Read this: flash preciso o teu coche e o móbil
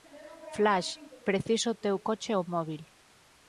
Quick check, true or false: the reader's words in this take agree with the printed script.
true